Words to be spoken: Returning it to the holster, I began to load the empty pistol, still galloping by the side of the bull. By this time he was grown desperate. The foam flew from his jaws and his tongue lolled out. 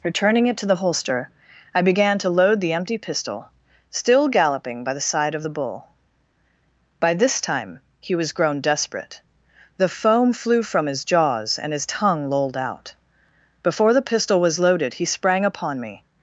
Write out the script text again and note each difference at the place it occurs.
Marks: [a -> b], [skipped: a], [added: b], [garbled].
Returning it to the holster, I began to load the empty pistol, still galloping by the side of the bull. By this time he was grown desperate. The foam flew from his jaws and his tongue lolled out. [added: Before the pistol was loaded he sprang upon me]